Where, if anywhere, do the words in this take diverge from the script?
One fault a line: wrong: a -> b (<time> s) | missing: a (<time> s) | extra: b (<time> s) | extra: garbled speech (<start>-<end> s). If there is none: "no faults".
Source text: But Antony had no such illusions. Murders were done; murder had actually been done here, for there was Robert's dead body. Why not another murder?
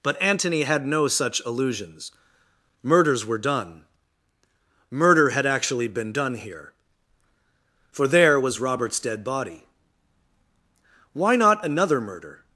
no faults